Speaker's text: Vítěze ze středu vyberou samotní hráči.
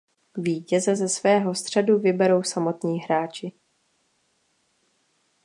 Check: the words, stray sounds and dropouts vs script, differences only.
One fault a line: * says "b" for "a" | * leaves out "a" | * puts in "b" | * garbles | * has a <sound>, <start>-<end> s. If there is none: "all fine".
* puts in "svého"